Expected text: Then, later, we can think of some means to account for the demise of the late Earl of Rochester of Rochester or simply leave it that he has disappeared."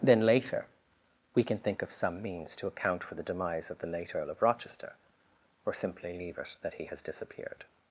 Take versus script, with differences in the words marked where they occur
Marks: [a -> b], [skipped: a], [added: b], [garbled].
Then, later, we can think of some means to account for the demise of the late Earl of Rochester [skipped: of Rochester] or simply leave it that he has disappeared."